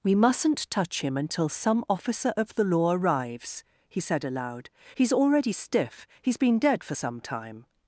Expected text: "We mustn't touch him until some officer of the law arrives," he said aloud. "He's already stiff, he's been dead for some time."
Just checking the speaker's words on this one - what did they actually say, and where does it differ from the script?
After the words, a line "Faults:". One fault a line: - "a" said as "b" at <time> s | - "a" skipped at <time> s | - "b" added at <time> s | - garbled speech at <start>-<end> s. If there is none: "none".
"We mustn't touch him until some officer of the law arrives," he said aloud. "He's already stiff, he's been dead for some time."
Faults:
none